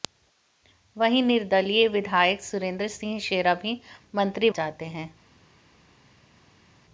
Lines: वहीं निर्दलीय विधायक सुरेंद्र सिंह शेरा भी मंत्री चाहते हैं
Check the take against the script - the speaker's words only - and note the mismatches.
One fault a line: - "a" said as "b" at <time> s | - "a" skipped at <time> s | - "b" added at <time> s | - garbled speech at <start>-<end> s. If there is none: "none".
none